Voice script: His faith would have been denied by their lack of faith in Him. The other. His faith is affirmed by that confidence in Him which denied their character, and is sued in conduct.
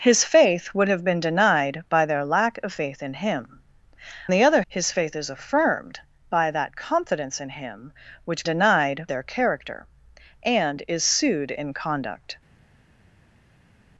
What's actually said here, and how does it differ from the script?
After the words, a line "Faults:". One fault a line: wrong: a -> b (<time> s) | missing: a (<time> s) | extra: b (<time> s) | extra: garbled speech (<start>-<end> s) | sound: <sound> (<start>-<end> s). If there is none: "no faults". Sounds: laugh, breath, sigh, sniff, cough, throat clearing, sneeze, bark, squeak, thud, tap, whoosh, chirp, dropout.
His faith would have been denied by their lack of faith in Him. The other. His faith is affirmed by that confidence in Him which denied their character, and is sued in conduct.
Faults:
no faults